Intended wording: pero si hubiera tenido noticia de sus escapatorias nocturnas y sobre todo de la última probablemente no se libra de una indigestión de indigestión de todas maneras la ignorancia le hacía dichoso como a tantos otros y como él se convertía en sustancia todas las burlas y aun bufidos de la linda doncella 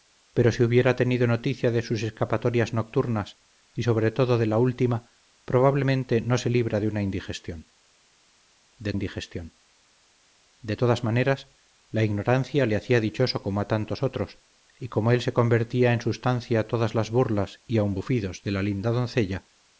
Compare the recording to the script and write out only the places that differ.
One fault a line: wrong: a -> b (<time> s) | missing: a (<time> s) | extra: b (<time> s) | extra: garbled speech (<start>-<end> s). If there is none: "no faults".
no faults